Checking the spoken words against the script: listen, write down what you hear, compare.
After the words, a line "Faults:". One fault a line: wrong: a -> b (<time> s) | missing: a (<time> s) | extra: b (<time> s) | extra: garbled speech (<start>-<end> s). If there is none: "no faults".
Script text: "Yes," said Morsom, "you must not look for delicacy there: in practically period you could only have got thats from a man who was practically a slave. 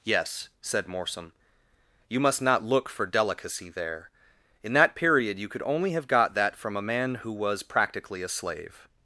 "Yes," said Morsom, "you must not look for delicacy there: in that period you could only have got that from a man who was practically a slave.
Faults:
wrong: practically -> that (4.7 s)
wrong: thats -> that (6.3 s)